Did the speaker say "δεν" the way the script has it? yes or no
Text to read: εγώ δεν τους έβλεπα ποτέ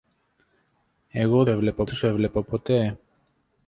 no